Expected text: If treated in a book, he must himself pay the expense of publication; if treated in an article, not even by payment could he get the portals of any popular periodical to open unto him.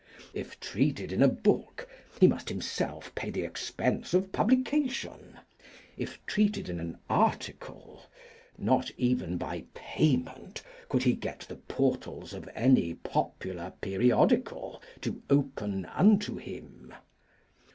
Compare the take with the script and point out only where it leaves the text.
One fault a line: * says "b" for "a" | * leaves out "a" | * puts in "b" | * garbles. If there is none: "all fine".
all fine